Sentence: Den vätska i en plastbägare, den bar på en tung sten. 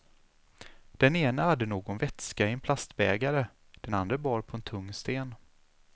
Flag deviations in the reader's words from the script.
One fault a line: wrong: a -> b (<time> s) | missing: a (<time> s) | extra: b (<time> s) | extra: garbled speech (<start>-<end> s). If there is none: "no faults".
extra: ene hade någon (1.1 s)
extra: andre (3.9 s)